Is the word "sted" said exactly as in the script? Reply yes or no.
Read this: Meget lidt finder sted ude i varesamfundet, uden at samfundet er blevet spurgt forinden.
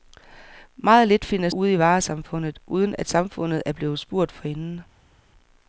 no